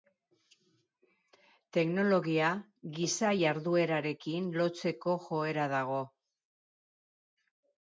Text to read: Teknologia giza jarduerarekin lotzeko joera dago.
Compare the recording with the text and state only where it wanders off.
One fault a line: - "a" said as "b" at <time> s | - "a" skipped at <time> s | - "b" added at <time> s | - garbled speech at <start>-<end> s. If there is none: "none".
none